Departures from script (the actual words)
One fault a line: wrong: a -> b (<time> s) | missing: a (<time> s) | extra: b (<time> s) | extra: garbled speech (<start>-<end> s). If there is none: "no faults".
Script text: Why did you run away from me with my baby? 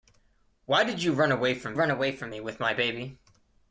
extra: run away from (1.7 s)